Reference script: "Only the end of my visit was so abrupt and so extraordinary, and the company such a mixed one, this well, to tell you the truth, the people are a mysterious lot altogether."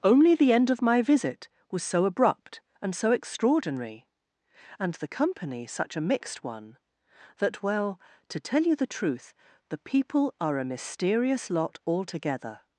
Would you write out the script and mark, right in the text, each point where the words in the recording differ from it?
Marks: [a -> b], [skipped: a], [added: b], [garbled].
"Only the end of my visit was so abrupt and so extraordinary, and the company such a mixed one, [this -> that] well, to tell you the truth, the people are a mysterious lot altogether."